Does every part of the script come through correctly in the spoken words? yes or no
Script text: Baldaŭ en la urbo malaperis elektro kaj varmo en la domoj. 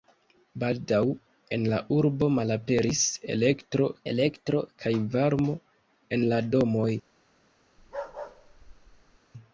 no